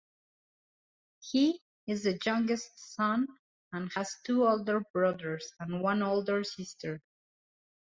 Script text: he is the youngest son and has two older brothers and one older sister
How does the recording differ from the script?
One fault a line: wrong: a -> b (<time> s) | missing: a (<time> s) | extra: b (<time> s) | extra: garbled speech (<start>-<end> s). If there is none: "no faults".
no faults